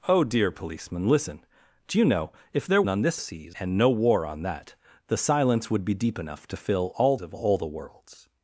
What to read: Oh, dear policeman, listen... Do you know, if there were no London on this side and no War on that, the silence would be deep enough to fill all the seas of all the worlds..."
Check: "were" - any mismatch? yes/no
yes